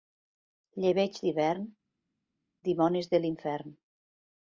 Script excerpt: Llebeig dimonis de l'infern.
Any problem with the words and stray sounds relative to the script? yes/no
yes